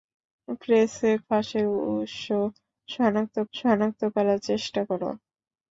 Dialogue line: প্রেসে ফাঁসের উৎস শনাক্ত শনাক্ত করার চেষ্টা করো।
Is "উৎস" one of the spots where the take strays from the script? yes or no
no